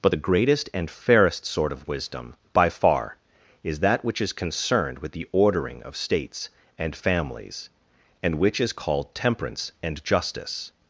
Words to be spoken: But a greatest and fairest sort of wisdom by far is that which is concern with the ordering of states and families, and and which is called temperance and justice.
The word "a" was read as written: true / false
false